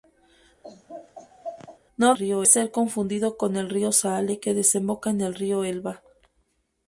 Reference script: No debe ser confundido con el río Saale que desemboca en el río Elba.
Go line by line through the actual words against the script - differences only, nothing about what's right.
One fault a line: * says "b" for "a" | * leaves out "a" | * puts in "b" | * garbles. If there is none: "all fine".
* says "río" for "debe"